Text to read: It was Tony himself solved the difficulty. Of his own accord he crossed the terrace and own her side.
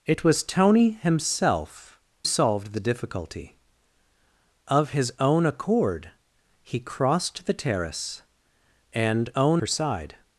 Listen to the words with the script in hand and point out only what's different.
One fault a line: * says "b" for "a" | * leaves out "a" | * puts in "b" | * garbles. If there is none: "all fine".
all fine